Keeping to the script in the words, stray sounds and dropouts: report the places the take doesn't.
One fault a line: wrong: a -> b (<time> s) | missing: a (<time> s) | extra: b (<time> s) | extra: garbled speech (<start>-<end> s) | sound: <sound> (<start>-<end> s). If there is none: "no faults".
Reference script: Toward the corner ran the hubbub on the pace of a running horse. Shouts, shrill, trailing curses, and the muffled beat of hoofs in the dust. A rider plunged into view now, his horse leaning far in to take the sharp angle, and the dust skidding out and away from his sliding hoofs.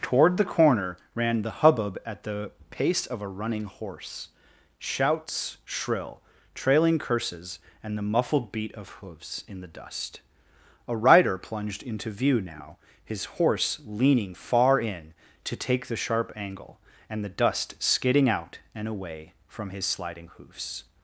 wrong: on -> at (2.0 s)